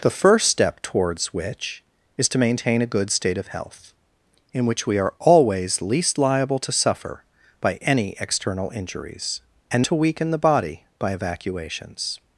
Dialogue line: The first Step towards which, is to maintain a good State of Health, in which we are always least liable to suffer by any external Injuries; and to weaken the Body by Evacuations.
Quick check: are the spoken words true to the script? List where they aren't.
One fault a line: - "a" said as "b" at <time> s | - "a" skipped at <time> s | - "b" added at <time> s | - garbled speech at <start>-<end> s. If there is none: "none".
none